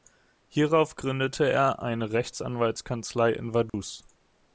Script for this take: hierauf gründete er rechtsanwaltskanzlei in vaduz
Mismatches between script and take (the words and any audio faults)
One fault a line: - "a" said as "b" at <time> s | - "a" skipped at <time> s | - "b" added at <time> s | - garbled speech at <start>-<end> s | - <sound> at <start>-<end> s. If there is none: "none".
- "eine" added at 1.8 s
- dropout at 3.7-3.7 s